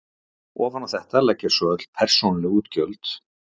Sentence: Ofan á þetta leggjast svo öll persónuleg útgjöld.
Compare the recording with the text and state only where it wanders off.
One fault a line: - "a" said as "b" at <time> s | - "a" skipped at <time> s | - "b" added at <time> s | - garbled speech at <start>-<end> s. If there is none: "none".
none